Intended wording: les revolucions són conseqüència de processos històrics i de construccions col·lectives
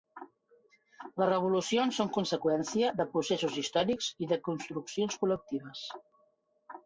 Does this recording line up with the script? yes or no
yes